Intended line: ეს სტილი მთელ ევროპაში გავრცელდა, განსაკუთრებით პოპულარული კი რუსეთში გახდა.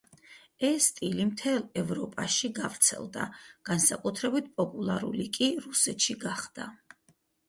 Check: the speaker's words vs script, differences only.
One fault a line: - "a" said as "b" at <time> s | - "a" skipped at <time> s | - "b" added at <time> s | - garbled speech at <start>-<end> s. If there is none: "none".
none